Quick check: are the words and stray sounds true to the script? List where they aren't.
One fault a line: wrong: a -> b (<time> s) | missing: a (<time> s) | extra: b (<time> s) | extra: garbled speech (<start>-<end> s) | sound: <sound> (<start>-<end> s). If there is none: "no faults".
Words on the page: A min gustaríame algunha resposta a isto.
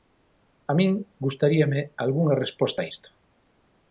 no faults